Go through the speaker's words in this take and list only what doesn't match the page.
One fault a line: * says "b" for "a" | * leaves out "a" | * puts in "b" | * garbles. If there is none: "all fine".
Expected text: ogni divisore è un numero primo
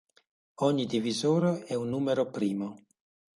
all fine